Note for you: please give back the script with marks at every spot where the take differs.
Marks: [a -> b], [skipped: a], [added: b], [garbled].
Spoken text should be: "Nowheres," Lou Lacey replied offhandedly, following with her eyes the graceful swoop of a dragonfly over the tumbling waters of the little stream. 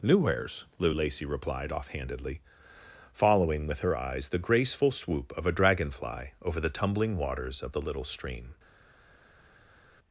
"Nowheres," Lou Lacey replied offhandedly, following with her eyes the graceful swoop of a dragonfly over the tumbling waters of the little stream.